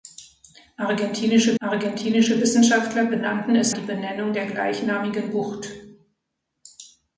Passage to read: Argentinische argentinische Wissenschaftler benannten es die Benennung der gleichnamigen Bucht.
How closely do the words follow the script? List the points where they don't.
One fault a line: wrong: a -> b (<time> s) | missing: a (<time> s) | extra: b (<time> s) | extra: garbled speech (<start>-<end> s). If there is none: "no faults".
no faults